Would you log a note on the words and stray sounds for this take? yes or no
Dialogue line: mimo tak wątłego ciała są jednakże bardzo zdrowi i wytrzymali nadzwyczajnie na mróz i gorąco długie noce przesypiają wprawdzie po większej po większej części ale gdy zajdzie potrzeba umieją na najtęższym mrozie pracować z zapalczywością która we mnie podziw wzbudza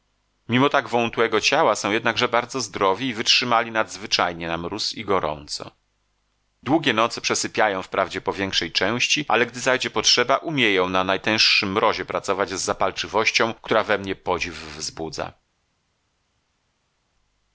yes